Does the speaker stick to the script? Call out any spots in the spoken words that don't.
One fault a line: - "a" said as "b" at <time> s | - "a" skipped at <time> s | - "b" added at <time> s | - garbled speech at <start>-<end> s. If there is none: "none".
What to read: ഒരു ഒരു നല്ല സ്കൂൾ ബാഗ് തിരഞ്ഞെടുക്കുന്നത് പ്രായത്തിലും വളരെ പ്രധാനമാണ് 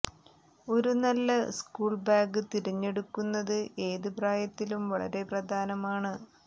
- "ഒരു" skipped at 0.9 s
- "ഏത്" added at 3.9 s